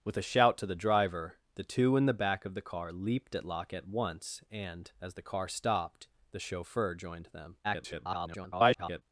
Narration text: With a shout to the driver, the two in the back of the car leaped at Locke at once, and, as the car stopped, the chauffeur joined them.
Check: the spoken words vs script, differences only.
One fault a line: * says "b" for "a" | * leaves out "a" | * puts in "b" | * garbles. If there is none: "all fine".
* garbles